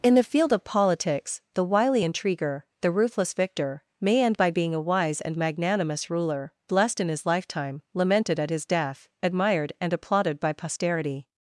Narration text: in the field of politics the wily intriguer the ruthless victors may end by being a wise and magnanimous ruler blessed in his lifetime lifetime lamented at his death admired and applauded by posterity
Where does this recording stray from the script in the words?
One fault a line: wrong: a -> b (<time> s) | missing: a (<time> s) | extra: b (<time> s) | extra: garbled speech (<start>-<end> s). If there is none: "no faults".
wrong: victors -> victor (3.3 s)
missing: lifetime (7.8 s)